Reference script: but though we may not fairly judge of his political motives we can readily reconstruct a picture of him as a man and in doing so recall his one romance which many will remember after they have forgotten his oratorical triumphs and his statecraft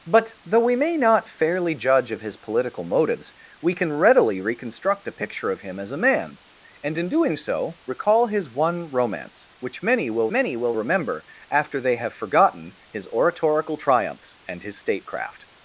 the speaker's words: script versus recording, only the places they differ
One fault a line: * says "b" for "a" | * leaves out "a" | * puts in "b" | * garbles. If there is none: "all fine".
* puts in "many will"